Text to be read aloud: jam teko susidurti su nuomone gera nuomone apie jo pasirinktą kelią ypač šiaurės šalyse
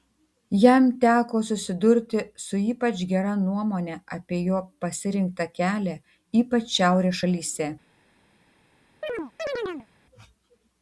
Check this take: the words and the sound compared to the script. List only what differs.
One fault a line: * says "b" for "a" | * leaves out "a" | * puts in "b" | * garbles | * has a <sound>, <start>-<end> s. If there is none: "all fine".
* says "ypač" for "nuomone"
* has a chirp, 9.0-9.9 s